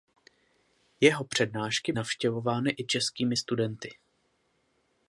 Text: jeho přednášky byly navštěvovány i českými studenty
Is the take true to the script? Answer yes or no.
no